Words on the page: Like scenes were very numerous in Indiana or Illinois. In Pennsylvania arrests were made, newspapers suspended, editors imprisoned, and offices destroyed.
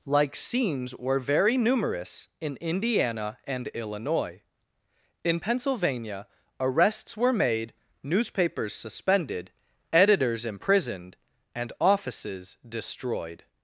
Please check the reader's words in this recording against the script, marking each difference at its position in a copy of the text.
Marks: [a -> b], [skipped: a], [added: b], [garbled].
Like scenes were very numerous in Indiana [or -> and] Illinois. In Pennsylvania arrests were made, newspapers suspended, editors imprisoned, and offices destroyed.